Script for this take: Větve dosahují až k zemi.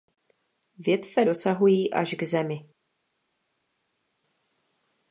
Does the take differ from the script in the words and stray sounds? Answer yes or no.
no